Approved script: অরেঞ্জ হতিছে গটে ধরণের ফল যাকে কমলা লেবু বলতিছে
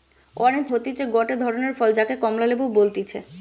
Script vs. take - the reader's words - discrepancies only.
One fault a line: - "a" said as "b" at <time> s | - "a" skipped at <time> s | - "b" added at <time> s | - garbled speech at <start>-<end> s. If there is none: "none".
none